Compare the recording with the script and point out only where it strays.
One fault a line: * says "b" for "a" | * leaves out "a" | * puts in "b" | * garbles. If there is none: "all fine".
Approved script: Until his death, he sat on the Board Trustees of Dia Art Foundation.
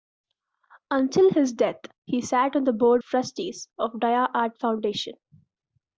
all fine